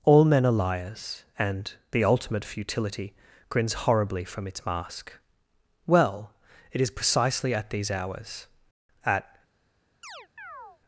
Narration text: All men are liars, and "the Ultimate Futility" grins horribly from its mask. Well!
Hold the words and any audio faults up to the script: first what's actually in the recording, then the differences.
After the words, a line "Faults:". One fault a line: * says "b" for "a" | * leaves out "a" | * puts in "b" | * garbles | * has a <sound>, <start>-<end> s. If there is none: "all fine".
All men are liars, and "the Ultimate Futility" grins horribly from its mask. Well! It is precisely at these hours, at
Faults:
* puts in "It is precisely at these hours at"
* has a chirp, 10.0-10.8 s